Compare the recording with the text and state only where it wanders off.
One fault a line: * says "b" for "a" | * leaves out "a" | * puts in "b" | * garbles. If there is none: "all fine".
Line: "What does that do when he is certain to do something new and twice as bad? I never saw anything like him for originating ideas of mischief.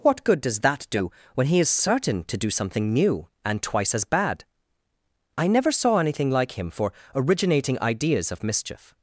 * puts in "good"